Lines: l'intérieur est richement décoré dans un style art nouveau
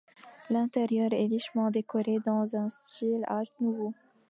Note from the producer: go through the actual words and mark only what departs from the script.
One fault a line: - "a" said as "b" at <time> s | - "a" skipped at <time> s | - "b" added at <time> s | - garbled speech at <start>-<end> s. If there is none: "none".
none